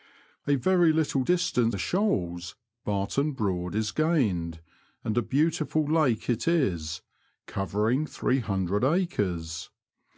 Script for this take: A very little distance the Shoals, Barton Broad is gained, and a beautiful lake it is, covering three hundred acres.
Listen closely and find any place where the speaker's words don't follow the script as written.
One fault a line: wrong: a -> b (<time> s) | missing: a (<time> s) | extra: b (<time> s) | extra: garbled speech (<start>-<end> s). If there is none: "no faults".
no faults